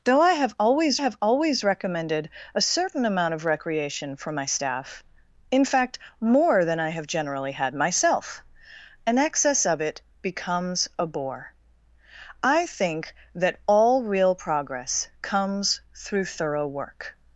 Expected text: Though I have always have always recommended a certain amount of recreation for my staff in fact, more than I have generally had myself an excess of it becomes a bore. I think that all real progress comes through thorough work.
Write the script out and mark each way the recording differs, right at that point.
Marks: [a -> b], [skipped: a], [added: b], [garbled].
Though I have always have always recommended a certain amount of recreation for my staff in fact, more than I have generally had myself an excess of it becomes a bore. I think that all real progress comes through thorough work.